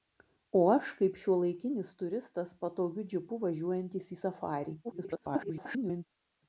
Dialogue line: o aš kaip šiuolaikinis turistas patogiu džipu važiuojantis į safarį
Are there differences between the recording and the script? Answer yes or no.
yes